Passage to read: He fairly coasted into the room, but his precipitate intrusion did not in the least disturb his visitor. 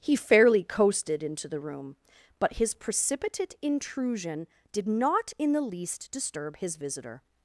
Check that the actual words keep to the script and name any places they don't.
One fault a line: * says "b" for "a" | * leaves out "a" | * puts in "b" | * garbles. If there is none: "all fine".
all fine